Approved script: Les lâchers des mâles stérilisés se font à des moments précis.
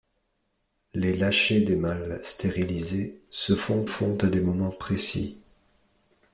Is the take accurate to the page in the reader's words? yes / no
no